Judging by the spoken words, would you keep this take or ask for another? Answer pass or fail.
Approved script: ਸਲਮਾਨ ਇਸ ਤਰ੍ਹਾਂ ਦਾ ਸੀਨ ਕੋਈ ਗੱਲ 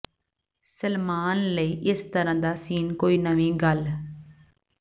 fail